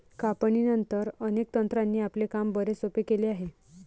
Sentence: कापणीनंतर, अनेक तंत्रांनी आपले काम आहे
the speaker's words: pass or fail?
fail